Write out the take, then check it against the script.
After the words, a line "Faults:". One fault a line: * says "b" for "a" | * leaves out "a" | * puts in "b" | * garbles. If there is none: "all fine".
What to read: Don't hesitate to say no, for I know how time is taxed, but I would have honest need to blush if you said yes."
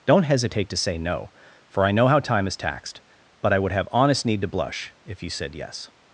Don't hesitate to say no, for I know how time is taxed, but I would have honest need to blush if you said yes."
Faults:
all fine